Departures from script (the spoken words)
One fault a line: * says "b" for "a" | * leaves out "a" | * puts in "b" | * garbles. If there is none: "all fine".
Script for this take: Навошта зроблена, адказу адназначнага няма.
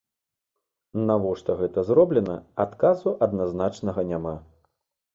* puts in "гэта"